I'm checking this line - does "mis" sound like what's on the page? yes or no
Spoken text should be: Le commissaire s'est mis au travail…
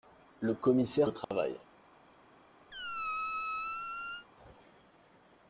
no